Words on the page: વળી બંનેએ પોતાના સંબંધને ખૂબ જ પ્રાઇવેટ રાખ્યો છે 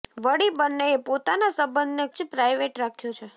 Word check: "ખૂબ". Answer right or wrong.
wrong